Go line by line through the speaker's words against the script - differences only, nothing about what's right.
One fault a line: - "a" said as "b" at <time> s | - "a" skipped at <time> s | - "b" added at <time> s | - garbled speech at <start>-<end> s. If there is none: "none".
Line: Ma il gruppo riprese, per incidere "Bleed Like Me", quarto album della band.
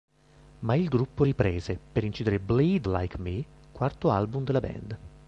none